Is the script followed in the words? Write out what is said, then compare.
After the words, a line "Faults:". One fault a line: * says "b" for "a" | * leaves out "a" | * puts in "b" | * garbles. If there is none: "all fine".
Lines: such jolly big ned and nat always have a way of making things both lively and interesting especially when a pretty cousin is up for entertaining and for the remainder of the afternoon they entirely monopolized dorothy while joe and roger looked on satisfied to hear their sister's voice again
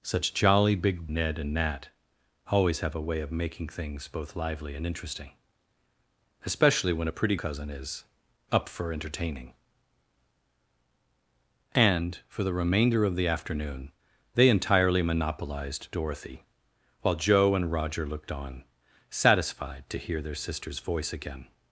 such jolly big ned and nat always have a way of making things both lively and interesting especially when a pretty cousin is up for entertaining and for the remainder of the afternoon they entirely monopolized dorothy while joe and roger looked on satisfied to hear their sister's voice again
Faults:
all fine